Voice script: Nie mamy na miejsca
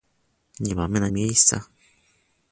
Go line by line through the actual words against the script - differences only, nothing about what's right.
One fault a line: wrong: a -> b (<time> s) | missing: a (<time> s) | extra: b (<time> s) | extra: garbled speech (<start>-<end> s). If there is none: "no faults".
no faults